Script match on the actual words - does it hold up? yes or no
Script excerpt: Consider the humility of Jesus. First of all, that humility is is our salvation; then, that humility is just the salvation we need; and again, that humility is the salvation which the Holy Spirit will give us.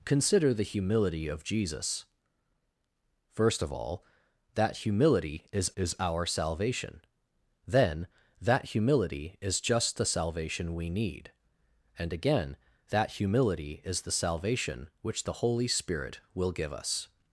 yes